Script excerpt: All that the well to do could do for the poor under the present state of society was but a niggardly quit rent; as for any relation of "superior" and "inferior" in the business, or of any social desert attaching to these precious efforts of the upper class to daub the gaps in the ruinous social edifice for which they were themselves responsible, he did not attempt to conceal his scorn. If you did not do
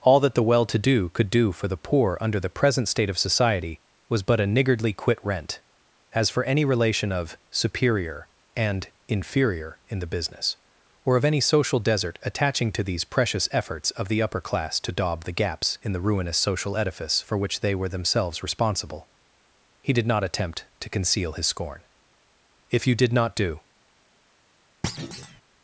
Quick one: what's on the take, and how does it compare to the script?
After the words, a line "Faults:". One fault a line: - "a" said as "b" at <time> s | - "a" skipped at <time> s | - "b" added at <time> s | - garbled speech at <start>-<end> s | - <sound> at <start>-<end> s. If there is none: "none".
All that the well to do could do for the poor under the present state of society was but a niggardly quit rent; as for any relation of "superior" and "inferior" in the business, or of any social desert attaching to these precious efforts of the upper class to daub the gaps in the ruinous social edifice for which they were themselves responsible, he did not attempt to conceal his scorn. If you did not do
Faults:
- thud at 24.8-25.4 s